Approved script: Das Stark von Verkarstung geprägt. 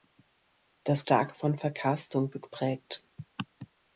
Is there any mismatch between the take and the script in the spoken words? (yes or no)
no